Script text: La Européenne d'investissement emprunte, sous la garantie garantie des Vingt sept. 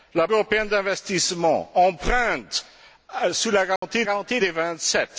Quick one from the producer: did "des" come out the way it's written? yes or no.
yes